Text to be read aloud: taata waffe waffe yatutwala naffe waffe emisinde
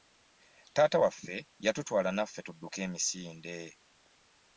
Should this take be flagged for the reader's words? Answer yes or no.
yes